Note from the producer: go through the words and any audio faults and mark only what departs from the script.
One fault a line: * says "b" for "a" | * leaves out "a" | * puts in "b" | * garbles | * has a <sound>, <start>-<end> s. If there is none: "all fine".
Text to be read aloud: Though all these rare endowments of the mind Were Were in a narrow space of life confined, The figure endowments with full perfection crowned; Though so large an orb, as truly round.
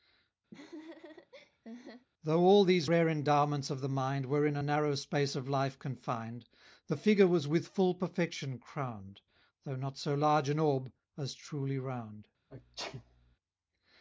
* has a laugh, 0.5-2.1 s
* leaves out "Were"
* says "was" for "endowments"
* puts in "not"
* has a sneeze, 12.5-13.4 s